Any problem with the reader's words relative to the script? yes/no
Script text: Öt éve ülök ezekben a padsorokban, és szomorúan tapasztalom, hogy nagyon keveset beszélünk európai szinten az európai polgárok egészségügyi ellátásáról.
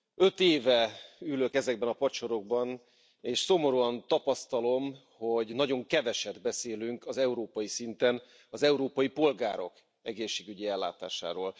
no